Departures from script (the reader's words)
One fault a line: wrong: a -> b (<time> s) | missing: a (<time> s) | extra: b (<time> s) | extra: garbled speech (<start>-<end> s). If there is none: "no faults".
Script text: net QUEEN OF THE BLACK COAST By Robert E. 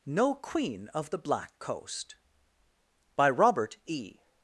wrong: net -> no (0.1 s)